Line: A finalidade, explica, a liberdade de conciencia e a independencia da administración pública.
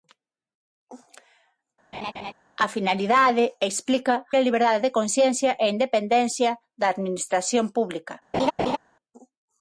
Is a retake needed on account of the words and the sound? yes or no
yes